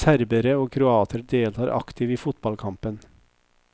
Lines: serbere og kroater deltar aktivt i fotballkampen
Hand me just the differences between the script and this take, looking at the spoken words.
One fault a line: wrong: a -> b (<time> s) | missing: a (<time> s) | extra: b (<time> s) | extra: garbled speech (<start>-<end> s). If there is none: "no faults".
no faults